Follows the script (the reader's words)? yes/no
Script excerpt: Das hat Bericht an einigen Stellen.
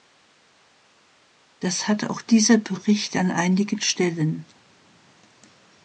no